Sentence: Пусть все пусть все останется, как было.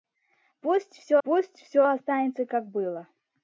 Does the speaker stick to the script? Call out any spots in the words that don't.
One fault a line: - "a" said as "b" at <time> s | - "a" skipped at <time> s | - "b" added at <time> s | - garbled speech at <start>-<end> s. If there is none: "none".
none